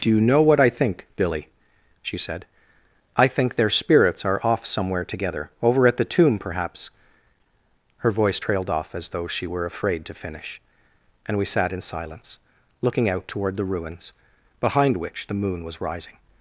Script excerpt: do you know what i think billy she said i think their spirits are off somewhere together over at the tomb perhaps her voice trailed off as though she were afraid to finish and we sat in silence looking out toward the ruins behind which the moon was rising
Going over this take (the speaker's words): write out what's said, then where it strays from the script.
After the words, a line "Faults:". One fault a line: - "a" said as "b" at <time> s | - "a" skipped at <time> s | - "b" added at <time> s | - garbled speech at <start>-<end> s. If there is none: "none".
do you know what i think billy she said i think their spirits are off somewhere together over at the tomb perhaps her voice trailed off as though she were afraid to finish and we sat in silence looking out toward the ruins behind which the moon was rising
Faults:
none